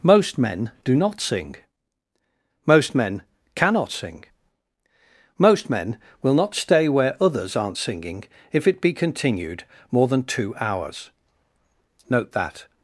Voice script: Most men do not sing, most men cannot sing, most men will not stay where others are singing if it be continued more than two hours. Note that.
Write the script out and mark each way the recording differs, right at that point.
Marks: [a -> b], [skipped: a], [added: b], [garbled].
Most men do not sing, most men cannot sing, most men will not stay where others [are -> aren't] singing if it be continued more than two hours. Note that.